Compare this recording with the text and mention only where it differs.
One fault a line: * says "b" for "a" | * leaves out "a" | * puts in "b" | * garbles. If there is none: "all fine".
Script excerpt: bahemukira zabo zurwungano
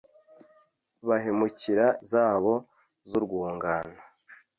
all fine